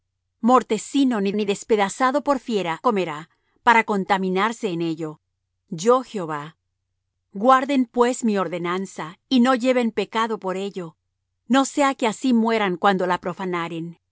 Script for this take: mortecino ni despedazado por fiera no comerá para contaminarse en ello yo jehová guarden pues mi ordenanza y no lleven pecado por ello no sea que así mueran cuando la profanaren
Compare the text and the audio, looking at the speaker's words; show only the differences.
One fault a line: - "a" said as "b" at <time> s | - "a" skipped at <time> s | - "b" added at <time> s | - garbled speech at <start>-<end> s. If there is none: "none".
- "ni" added at 1.3 s
- "no" skipped at 2.8 s